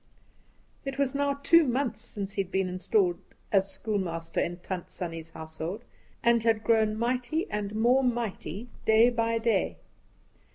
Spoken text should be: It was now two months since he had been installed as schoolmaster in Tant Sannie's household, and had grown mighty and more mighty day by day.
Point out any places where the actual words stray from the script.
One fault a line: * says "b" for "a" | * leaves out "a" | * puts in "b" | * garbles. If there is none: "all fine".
all fine